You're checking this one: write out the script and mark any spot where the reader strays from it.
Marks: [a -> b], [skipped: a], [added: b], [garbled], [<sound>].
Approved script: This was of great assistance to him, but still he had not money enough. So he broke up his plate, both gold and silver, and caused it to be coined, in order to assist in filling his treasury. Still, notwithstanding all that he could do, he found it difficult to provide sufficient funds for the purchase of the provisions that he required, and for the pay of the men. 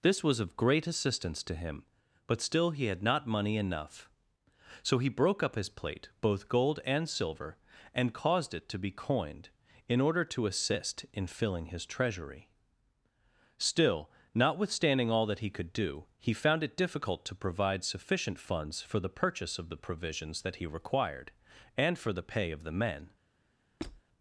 This was of great assistance to him, but still he had not money enough. So he broke up his plate, both gold and silver, and caused it to be coined, in order to assist in filling his treasury. Still, notwithstanding all that he could do, he found it difficult to provide sufficient funds for the purchase of the provisions that he required, and for the pay of the men. [squeak]